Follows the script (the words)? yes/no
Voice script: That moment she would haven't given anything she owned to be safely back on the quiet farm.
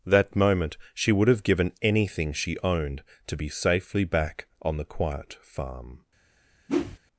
no